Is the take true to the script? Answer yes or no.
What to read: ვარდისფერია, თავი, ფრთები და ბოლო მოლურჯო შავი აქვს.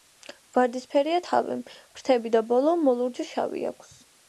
yes